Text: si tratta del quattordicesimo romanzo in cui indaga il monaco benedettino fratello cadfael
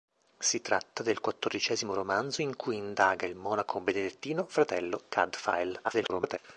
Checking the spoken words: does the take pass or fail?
fail